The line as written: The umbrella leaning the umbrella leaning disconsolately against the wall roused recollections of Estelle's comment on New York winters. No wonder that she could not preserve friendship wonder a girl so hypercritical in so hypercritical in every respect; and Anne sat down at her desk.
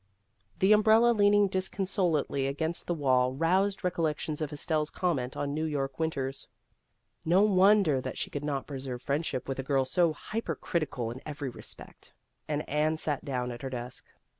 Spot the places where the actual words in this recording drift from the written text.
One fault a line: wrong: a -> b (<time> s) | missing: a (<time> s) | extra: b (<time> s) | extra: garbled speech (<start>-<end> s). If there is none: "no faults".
missing: the umbrella leaning (1.5 s)
wrong: wonder -> with (9.5 s)
missing: so hypercritical in (11.2 s)